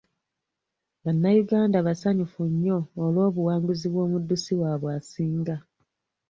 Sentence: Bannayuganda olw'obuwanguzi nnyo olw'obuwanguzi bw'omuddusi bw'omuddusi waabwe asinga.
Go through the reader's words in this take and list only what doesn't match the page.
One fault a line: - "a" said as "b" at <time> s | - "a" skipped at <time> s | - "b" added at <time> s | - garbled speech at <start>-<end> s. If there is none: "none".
- "olw'obuwanguzi" said as "basanyufu" at 1.9 s
- "bw'omuddusi" skipped at 4.5 s